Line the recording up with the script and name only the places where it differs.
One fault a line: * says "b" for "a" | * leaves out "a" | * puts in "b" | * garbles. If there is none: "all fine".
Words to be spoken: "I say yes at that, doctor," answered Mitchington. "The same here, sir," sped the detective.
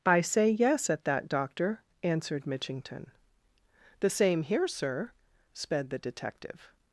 all fine